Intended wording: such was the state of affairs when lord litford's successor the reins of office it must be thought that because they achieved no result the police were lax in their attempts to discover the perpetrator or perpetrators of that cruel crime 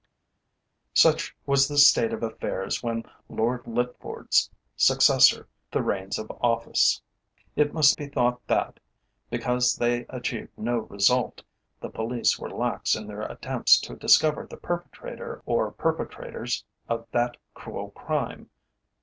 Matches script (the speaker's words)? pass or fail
pass